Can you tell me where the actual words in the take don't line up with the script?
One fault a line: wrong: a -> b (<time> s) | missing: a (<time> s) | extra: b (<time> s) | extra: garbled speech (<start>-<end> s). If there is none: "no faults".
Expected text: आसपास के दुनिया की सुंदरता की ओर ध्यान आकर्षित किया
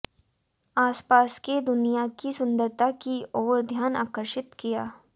no faults